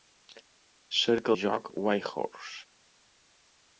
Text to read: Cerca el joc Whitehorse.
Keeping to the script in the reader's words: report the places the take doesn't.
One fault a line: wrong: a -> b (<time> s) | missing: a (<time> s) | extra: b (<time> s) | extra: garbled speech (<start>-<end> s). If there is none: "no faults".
no faults